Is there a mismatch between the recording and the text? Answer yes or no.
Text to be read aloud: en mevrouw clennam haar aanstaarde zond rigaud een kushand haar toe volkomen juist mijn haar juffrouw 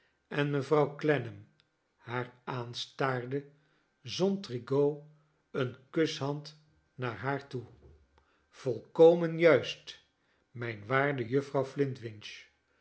yes